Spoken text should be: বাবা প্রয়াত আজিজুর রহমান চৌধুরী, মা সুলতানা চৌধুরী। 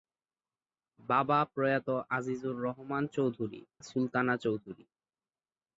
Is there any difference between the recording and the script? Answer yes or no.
yes